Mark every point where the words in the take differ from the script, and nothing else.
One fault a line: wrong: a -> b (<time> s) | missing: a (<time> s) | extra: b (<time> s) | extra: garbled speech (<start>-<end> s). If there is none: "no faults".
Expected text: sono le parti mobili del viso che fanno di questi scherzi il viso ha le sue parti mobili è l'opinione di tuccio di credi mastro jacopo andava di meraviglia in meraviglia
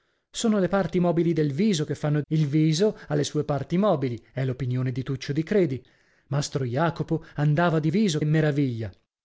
missing: di questi scherzi (2.2 s)
wrong: meraviglia -> viso (7.9 s)